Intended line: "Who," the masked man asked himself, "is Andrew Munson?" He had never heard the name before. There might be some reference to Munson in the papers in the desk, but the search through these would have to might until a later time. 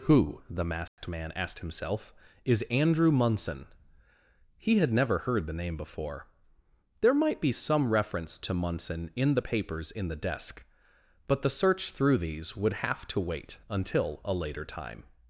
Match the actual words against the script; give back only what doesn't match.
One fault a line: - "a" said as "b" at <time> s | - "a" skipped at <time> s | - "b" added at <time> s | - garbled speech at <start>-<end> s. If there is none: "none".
- "might" said as "wait" at 13.2 s